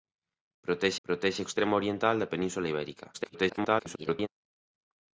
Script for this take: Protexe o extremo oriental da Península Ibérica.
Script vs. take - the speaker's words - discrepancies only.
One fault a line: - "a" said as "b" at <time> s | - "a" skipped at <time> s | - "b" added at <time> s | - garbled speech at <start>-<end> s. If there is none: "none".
- "protexe" added at 1.1 s
- garbled speech at 3.1-4.3 s